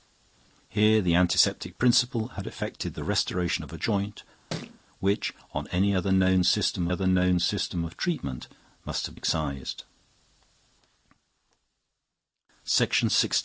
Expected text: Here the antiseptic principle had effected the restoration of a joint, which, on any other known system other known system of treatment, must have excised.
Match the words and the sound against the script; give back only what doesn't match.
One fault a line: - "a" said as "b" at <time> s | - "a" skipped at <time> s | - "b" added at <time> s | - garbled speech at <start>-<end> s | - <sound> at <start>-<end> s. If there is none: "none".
- thud at 4.5-4.8 s